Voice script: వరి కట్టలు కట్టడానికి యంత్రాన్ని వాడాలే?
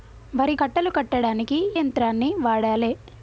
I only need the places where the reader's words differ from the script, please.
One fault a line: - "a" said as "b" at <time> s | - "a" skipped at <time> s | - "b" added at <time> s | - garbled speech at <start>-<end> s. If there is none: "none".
none